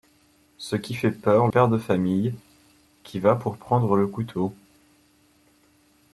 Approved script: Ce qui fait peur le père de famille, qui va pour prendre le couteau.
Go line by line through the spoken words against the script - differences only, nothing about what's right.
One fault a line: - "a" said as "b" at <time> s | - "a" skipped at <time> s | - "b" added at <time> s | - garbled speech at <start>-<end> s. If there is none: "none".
- "le" skipped at 1.5 s